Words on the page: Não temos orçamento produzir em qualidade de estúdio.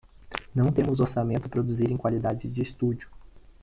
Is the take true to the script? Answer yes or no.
yes